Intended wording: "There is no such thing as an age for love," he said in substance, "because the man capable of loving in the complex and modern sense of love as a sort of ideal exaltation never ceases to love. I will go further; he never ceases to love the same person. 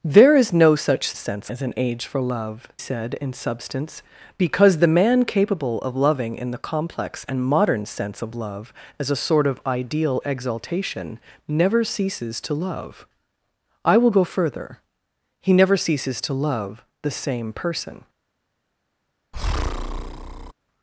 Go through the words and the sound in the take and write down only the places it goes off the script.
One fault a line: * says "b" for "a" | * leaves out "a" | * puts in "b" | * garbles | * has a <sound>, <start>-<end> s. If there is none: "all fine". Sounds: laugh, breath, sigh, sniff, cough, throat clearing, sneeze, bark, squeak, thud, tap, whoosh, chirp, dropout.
* says "sense" for "thing"
* leaves out "he"
* has a breath, 19.3-20.5 s